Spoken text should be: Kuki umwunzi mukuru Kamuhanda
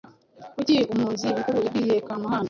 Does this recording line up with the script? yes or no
no